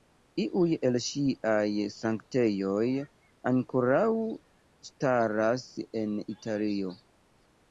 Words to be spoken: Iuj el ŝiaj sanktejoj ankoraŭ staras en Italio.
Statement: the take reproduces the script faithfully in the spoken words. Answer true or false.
true